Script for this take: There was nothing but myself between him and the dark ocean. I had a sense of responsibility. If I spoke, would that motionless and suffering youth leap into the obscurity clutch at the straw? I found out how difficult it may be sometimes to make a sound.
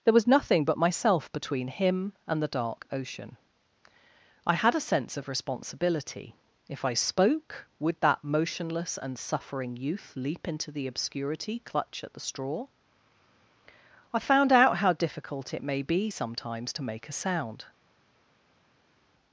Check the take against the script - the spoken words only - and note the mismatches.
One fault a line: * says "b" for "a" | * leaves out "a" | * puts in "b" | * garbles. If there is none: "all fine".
all fine